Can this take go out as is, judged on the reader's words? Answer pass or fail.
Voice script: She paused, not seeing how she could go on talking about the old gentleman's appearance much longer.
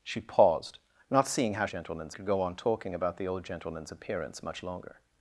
fail